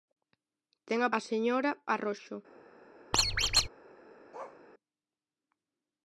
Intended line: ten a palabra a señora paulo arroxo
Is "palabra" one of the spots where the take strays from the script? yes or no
yes